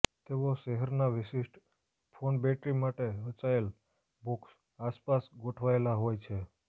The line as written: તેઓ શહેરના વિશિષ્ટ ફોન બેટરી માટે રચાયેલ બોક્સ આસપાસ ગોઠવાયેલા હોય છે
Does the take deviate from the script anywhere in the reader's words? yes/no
no